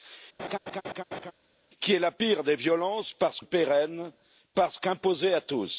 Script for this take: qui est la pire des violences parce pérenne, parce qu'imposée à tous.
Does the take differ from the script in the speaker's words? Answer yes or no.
no